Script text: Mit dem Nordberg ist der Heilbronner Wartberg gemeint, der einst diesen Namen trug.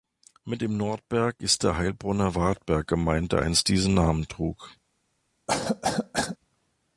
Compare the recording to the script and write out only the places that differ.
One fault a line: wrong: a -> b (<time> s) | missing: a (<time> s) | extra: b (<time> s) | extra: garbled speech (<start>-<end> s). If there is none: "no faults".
no faults